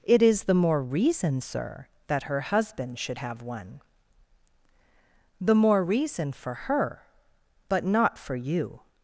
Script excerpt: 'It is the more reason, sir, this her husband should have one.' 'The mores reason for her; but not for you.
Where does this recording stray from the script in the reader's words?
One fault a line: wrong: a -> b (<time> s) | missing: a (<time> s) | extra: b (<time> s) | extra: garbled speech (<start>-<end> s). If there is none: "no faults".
wrong: this -> that (2.1 s)
wrong: mores -> more (5.6 s)